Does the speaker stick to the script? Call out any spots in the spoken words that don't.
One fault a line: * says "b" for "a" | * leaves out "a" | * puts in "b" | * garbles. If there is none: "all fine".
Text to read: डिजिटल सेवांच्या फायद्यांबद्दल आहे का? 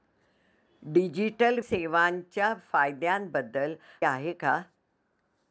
all fine